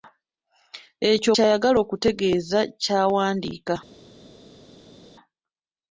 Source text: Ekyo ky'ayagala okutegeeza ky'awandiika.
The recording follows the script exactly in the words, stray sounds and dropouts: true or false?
true